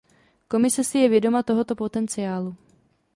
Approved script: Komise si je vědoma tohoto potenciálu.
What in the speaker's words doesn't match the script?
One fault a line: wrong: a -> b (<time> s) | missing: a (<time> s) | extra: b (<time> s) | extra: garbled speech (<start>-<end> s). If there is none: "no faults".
no faults